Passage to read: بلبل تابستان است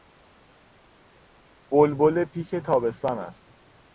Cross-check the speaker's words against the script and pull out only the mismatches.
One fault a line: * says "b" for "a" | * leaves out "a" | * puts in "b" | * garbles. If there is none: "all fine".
* puts in "پیک"